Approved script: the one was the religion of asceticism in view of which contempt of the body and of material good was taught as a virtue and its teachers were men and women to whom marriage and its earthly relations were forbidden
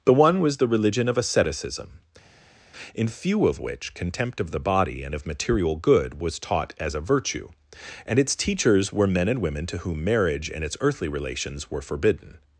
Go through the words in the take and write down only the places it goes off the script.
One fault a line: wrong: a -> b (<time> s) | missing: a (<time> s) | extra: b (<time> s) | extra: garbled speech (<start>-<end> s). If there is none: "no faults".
wrong: view -> few (3.1 s)